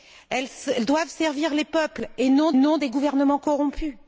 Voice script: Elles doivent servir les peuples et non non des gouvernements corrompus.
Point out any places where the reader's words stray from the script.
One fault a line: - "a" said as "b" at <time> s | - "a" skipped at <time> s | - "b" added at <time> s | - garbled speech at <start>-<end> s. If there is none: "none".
none